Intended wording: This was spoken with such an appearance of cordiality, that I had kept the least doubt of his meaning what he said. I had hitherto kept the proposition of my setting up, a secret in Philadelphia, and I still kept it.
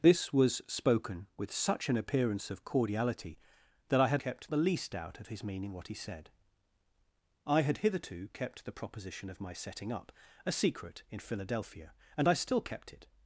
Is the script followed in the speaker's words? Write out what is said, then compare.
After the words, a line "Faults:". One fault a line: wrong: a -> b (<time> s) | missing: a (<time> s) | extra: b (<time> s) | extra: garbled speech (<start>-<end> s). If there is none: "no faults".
This was spoken with such an appearance of cordiality, that I had kept the least doubt of his meaning what he said. I had hitherto kept the proposition of my setting up, a secret in Philadelphia, and I still kept it.
Faults:
no faults